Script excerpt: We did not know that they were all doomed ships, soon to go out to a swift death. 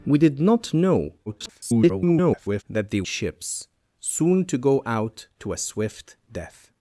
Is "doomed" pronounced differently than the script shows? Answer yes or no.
yes